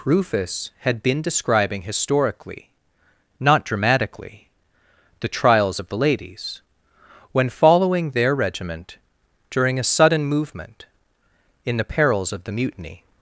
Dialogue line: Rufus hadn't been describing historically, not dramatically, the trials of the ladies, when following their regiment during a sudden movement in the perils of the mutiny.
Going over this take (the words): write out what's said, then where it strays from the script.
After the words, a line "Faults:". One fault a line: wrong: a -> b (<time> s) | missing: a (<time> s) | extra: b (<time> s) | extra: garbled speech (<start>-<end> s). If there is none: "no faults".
Rufus had been describing historically, not dramatically, the trials of the ladies, when following their regiment during a sudden movement in the perils of the mutiny.
Faults:
wrong: hadn't -> had (0.8 s)